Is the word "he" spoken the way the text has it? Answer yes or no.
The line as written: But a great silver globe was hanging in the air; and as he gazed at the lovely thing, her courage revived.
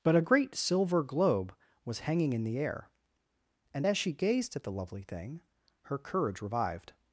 no